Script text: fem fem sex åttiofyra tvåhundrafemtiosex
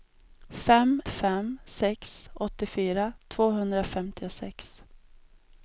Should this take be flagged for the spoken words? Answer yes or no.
no